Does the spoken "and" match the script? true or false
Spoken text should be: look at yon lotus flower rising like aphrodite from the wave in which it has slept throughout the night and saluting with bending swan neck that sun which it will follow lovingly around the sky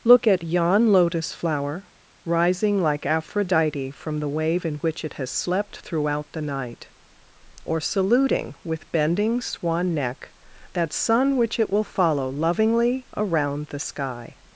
false